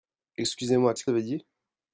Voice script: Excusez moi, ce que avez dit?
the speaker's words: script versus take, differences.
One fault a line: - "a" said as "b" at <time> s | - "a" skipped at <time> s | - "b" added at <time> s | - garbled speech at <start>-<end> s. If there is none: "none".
none